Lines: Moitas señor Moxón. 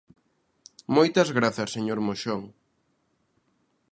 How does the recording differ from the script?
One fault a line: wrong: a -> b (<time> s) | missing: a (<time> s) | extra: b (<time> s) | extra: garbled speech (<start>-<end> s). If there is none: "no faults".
extra: grazas (1.4 s)